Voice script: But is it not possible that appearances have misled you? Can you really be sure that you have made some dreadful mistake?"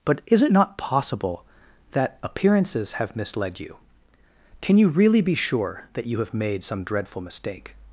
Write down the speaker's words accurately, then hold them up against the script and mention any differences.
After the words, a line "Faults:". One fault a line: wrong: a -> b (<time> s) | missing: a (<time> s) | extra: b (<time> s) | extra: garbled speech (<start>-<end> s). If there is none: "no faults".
But is it not possible that appearances have misled you? Can you really be sure that you have made some dreadful mistake?"
Faults:
no faults